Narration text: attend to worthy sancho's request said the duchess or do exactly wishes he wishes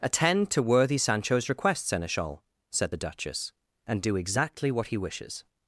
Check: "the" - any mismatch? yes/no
no